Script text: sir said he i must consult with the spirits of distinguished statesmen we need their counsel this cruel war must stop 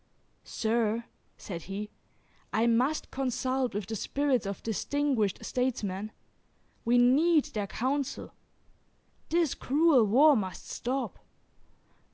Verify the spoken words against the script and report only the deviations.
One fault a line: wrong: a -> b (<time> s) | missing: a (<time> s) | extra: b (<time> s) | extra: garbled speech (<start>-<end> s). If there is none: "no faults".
no faults